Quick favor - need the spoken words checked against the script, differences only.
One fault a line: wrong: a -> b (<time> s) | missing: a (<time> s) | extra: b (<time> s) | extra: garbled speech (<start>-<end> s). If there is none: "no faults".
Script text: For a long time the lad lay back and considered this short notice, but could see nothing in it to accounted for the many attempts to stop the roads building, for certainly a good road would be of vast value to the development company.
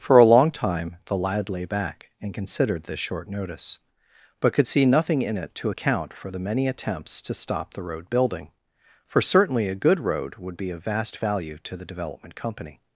wrong: accounted -> account (5.7 s)
wrong: roads -> road (7.8 s)